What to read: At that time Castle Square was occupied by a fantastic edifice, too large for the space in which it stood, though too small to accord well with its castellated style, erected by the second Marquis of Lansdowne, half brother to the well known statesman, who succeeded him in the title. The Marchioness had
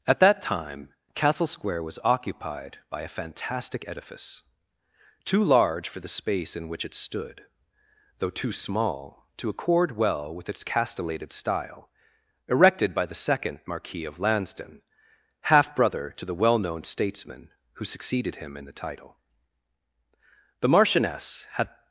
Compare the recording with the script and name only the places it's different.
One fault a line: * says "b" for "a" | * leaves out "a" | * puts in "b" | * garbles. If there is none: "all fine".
all fine